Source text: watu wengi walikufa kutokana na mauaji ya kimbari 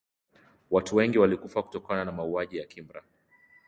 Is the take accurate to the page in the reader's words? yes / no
yes